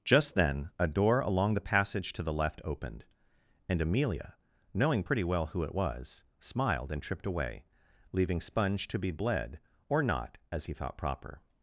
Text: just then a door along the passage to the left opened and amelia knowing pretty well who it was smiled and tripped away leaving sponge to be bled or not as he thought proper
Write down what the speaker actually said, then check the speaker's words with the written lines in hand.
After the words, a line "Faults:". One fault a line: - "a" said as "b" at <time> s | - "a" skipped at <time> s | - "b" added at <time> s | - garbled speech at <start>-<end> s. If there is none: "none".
just then a door along the passage to the left opened and amelia knowing pretty well who it was smiled and tripped away leaving sponge to be bled or not as he thought proper
Faults:
none